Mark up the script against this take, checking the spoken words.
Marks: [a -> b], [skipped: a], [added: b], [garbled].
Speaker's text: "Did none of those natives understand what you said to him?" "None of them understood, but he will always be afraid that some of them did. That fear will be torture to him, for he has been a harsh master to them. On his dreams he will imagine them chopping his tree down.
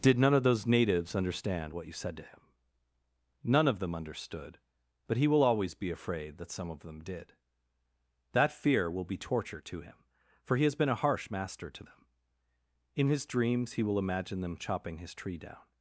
"Did none of those natives understand what you said to him?" "None of them understood, but he will always be afraid that some of them did. That fear will be torture to him, for he has been a harsh master to them. [On -> In] his dreams he will imagine them chopping his tree down.